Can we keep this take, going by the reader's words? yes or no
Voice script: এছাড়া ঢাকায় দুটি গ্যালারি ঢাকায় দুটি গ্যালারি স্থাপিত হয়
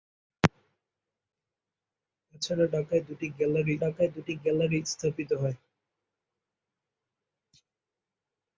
yes